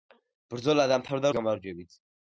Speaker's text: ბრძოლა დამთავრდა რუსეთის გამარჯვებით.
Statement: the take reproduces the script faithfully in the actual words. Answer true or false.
false